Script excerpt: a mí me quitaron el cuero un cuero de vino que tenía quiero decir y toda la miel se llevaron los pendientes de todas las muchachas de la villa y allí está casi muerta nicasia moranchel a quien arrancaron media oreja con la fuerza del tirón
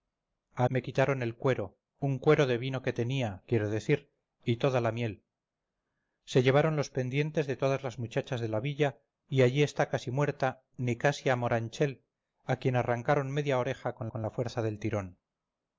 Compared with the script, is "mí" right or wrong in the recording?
wrong